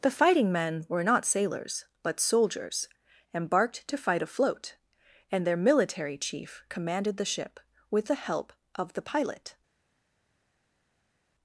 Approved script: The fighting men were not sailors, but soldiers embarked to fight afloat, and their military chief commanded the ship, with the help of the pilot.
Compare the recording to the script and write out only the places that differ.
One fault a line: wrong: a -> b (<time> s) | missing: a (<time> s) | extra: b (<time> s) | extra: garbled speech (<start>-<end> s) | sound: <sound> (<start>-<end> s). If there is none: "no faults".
no faults